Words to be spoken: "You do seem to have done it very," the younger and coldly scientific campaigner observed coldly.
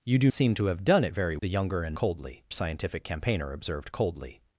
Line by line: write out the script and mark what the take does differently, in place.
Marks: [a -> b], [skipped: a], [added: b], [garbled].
"You do seem to have done it very," the younger and coldly scientific campaigner observed coldly.